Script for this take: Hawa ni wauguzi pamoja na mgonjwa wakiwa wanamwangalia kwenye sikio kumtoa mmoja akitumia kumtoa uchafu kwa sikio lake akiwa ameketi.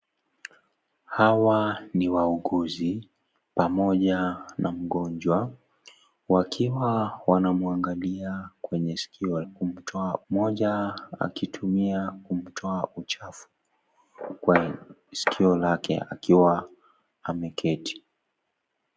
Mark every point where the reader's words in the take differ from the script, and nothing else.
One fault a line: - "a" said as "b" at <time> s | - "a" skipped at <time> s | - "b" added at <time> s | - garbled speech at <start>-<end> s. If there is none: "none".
none